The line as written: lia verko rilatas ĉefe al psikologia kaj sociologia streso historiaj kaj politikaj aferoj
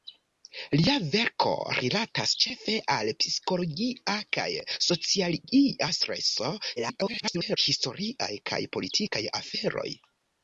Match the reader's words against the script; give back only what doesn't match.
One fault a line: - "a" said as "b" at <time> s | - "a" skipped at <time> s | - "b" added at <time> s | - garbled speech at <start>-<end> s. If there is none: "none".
- garbled speech at 6.8-7.6 s